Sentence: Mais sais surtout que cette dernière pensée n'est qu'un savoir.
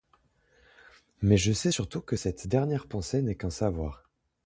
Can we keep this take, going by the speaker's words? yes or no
no